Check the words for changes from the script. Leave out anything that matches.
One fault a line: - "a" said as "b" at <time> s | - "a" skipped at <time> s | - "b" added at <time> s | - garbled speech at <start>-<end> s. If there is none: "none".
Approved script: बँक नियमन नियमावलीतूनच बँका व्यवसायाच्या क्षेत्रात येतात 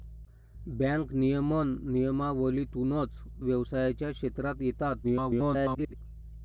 - "बँका" skipped at 3.2 s
- garbled speech at 5.0-5.9 s